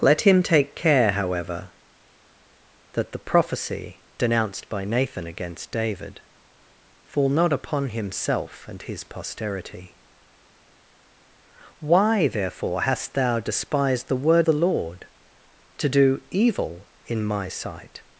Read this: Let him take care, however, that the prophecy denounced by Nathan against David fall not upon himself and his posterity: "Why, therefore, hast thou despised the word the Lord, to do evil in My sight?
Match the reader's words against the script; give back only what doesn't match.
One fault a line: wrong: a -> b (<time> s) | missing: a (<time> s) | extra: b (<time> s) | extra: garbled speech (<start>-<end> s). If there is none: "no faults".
no faults